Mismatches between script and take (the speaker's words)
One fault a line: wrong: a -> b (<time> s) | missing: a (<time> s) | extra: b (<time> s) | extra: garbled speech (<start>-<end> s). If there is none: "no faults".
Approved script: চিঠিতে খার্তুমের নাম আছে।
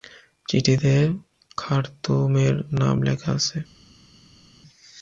extra: লেখা (3.0 s)